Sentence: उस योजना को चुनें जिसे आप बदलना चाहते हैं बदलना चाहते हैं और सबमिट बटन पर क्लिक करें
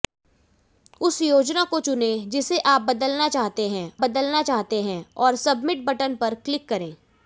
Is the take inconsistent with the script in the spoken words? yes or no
no